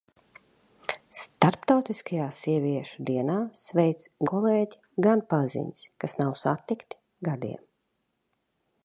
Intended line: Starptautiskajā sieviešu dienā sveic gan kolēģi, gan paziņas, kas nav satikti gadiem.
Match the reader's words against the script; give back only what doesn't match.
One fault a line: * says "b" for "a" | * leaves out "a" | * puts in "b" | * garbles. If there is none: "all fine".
* leaves out "gan"